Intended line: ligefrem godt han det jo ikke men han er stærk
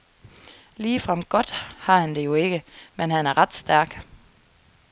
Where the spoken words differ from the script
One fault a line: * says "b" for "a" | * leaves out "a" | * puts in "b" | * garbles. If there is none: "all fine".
* puts in "har"
* puts in "ret"